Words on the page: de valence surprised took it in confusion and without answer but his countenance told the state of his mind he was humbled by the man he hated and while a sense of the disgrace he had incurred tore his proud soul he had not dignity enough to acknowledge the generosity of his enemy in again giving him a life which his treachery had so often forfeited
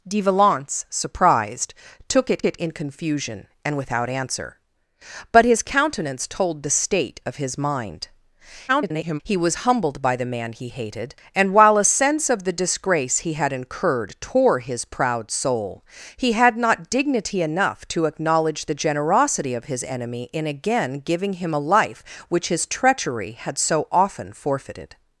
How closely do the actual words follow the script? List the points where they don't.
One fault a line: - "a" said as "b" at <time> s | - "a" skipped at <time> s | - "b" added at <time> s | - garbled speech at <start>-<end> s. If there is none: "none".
- "it" added at 2.5 s
- garbled speech at 8.7-9.2 s